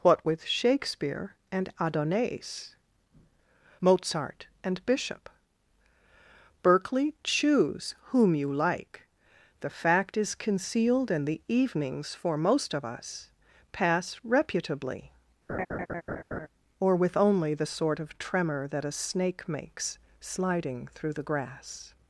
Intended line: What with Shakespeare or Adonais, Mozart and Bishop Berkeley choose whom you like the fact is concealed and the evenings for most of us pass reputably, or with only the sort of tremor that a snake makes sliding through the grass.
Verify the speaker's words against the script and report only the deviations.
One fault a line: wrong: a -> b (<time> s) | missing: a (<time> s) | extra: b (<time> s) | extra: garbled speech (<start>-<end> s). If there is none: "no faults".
wrong: or -> and (1.5 s)